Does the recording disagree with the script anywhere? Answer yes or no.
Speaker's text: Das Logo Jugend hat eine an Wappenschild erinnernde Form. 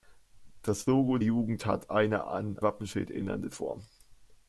no